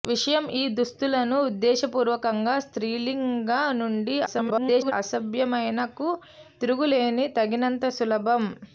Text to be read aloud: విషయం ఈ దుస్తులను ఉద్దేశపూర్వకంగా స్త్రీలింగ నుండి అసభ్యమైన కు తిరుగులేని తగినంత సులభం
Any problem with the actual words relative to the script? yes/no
yes